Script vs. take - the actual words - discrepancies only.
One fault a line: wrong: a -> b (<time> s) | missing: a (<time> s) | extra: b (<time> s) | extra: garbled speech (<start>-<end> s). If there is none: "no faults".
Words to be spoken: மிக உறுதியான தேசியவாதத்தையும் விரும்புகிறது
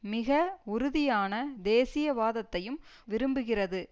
no faults